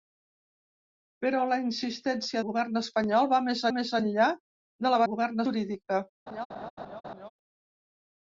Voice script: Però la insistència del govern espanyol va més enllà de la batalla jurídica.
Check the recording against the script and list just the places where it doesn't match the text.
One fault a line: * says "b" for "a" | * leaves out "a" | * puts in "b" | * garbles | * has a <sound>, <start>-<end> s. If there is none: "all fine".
* leaves out "del"
* puts in "més"
* says "govern" for "batalla"
* has a laugh, 6.3-7.3 s